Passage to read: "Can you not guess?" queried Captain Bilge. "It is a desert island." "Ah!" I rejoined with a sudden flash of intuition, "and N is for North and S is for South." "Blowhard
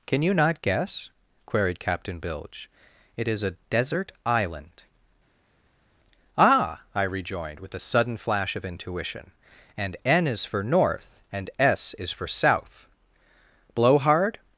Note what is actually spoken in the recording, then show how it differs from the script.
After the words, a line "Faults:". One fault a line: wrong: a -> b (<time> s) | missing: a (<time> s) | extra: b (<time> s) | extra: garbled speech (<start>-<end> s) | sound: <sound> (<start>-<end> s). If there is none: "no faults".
"Can you not guess?" queried Captain Bilge. "It is a desert island." "Ah!" I rejoined with a sudden flash of intuition, "and N is for North and S is for South." "Blowhard
Faults:
no faults